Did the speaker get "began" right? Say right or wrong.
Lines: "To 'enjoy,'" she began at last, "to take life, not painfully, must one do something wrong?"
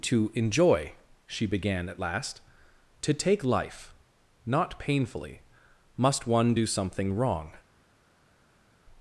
right